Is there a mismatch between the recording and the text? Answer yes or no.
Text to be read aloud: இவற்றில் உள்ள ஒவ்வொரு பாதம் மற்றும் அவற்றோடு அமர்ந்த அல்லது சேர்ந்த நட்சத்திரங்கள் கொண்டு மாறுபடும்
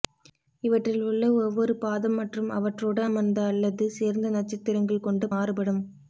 no